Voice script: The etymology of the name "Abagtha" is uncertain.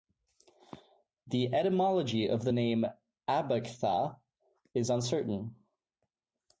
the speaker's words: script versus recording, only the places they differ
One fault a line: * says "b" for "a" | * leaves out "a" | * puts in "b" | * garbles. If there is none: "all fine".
all fine